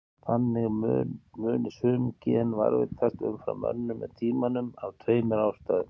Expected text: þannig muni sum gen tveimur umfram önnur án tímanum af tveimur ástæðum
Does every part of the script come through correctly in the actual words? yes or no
no